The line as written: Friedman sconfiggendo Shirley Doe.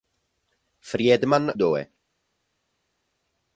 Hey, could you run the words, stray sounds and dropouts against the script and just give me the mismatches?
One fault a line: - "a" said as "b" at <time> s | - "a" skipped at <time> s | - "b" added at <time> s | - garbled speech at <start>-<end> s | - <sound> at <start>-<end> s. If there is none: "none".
- "sconfiggendo Shirley" skipped at 1.5 s